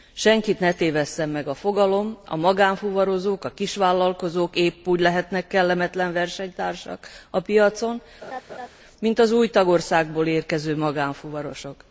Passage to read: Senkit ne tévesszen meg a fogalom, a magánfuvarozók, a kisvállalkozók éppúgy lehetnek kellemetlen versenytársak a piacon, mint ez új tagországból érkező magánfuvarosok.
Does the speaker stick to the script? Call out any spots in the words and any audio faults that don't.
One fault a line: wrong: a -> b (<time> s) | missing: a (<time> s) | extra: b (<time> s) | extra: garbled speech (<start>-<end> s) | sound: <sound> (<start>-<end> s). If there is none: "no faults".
sound: laugh (8.2-8.7 s)
wrong: ez -> az (9.2 s)